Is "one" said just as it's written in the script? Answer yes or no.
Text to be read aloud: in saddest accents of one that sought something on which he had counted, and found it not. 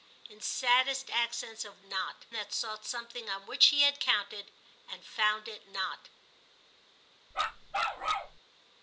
no